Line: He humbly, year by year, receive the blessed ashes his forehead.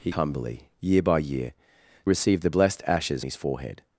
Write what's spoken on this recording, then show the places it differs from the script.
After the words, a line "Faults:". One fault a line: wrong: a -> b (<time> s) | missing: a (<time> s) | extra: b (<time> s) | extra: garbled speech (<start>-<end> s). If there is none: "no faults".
He humbly, year by year, receive the blessed ashes his forehead.
Faults:
no faults